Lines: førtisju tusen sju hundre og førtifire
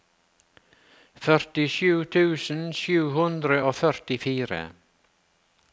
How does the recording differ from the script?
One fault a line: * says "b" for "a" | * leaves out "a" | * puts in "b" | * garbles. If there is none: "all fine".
all fine